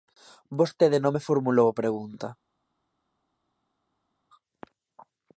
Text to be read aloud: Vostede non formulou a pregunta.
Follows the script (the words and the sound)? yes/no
no